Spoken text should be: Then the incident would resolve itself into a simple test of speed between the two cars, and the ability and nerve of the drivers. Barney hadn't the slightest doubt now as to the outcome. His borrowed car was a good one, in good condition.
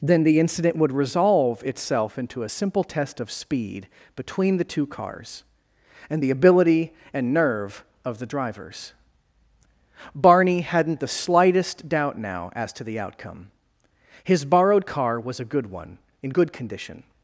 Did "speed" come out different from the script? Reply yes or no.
no